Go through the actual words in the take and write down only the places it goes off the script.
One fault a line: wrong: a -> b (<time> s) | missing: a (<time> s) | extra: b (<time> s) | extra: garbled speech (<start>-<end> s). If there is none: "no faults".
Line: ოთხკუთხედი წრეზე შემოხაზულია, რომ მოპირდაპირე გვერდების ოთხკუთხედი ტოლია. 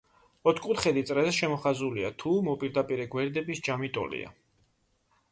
wrong: რომ -> თუ (2.2 s)
wrong: ოთხკუთხედი -> ჯამი (3.7 s)